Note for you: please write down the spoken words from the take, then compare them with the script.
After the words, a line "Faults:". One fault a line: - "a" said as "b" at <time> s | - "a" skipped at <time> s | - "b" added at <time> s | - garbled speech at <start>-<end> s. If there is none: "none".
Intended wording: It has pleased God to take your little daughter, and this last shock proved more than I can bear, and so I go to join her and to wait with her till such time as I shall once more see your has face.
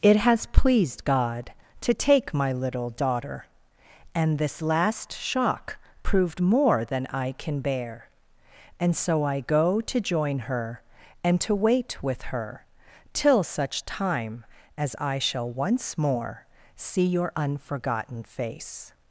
It has pleased God to take my little daughter, and this last shock proved more than I can bear, and so I go to join her and to wait with her till such time as I shall once more see your unforgotten face.
Faults:
- "your" said as "my" at 2.3 s
- "has" said as "unforgotten" at 17.4 s